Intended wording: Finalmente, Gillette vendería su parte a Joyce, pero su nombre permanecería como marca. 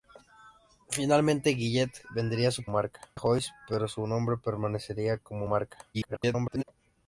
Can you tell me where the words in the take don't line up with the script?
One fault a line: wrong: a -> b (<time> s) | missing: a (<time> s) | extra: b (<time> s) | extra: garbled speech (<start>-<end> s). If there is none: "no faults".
wrong: parte -> marca (2.7 s)
extra: garbled speech (5.9-6.6 s)